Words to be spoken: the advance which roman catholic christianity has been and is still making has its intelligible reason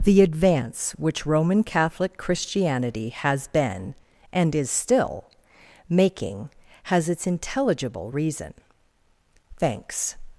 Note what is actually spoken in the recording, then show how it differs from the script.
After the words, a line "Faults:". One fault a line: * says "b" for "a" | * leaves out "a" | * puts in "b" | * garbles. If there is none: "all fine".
the advance which roman catholic christianity has been and is still making has its intelligible reason thanks
Faults:
* puts in "thanks"